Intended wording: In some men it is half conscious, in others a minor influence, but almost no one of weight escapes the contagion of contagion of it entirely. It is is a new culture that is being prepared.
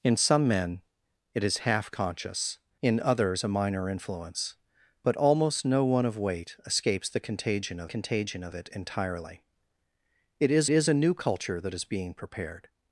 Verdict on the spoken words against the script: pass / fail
pass